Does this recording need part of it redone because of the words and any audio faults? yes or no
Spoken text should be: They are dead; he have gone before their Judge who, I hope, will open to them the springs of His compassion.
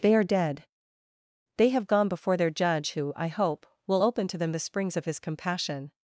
yes